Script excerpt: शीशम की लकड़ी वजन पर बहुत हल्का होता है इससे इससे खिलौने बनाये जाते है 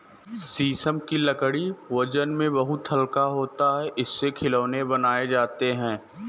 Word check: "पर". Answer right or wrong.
wrong